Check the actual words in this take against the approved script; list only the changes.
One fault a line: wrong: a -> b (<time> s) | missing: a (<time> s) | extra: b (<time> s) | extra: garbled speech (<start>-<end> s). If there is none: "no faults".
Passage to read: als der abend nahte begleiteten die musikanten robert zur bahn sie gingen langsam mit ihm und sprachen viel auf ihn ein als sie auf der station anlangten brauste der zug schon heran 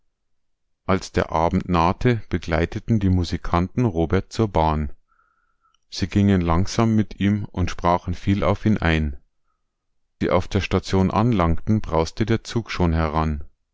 missing: als (9.2 s)